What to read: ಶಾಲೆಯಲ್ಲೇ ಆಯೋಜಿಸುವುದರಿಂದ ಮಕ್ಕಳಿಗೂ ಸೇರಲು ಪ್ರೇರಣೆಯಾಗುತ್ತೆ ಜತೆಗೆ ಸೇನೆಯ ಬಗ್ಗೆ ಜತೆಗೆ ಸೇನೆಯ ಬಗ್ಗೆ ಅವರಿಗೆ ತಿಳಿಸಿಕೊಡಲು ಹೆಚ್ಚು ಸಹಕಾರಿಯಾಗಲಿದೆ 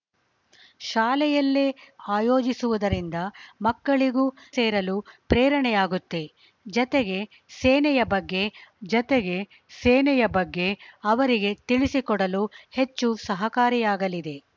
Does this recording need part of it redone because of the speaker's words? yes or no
no